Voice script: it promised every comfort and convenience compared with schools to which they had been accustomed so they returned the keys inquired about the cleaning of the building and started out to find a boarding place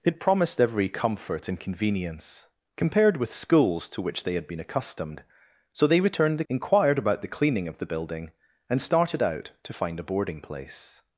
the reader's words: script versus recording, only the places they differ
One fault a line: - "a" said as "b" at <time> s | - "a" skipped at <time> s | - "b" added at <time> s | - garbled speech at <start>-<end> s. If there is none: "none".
- "keys" skipped at 6.4 s